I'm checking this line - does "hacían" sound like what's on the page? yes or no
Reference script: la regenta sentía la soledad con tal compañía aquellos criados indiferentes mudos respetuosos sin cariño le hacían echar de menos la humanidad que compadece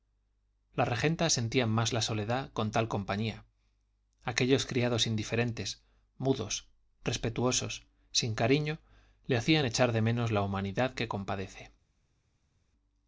yes